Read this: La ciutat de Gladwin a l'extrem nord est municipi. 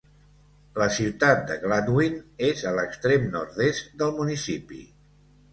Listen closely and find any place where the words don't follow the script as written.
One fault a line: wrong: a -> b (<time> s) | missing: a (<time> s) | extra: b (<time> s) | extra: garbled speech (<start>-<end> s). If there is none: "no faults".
extra: és (2.5 s)
extra: del (4.0 s)